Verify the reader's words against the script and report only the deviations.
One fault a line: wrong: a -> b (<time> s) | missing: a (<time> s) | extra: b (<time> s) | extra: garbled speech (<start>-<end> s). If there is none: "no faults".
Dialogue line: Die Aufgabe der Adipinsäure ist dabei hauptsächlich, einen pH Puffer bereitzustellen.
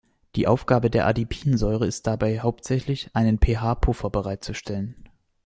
no faults